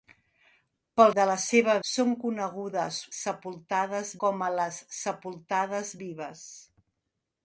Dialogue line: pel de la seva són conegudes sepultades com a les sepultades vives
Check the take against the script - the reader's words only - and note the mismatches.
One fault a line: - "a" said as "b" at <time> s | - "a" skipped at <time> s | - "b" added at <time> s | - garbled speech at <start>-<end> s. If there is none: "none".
none